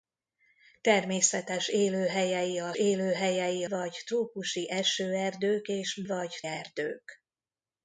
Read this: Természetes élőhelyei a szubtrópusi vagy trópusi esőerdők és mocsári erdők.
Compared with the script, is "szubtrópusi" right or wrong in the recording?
wrong